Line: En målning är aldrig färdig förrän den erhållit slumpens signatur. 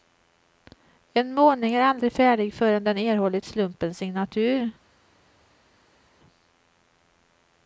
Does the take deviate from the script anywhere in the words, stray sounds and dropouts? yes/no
no